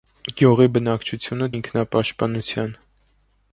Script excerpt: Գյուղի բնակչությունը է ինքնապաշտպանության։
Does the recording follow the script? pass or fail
pass